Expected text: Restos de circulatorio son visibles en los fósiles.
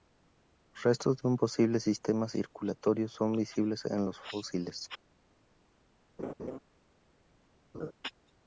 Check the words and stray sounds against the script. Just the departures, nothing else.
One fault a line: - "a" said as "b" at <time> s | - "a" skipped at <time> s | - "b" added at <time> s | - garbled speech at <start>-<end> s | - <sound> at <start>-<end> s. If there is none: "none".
- "un posible sistema" added at 1.3 s
- laugh at 6.2-6.6 s
- laugh at 7.7-7.9 s